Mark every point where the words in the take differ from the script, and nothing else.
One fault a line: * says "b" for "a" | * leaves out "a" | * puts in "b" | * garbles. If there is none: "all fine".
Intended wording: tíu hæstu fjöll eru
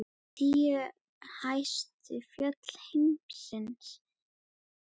* puts in "heims"